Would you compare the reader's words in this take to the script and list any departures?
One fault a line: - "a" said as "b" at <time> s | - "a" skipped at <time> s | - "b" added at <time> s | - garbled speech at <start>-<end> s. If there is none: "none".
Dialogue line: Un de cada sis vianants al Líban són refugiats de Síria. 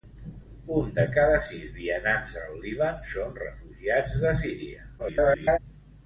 - garbled speech at 5.0-5.6 s